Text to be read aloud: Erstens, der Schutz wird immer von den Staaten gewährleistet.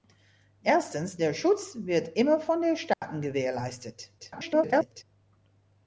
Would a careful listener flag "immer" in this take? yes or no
no